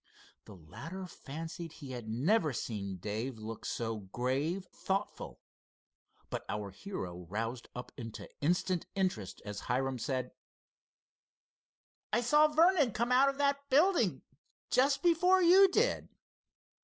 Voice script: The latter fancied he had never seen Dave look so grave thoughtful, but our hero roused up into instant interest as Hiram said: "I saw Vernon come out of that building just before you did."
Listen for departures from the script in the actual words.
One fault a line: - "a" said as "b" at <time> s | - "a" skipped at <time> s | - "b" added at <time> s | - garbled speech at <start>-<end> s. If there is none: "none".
none